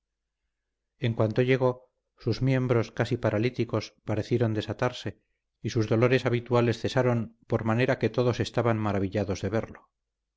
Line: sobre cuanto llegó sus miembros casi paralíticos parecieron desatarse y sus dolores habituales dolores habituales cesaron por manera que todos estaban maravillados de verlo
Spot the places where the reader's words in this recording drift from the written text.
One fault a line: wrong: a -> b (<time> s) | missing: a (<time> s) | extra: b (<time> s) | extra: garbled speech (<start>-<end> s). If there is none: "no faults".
wrong: sobre -> en (1.0 s)
missing: dolores habituales (6.8 s)